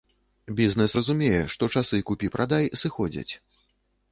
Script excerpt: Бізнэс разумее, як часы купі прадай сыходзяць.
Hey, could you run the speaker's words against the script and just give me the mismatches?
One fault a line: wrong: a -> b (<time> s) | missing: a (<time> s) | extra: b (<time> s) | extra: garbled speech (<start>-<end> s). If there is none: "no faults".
wrong: як -> што (1.5 s)